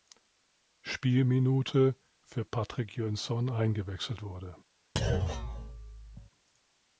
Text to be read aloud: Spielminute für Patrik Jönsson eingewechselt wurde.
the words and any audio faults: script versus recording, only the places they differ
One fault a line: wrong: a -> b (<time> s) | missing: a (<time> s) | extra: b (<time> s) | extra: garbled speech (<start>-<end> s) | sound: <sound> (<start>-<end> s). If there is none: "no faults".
sound: thud (5.0-6.3 s)